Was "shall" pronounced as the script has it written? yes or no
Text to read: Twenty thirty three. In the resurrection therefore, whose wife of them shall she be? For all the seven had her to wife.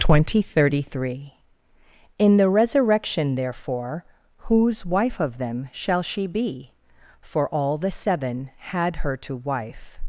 yes